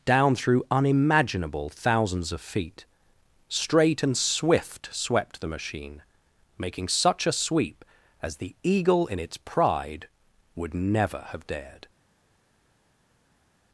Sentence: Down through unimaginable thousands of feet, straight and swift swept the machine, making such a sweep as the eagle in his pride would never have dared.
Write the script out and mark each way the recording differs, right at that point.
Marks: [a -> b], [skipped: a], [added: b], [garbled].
Down through unimaginable thousands of feet, straight and swift swept the machine, making such a sweep as the eagle in [his -> its] pride would never have dared.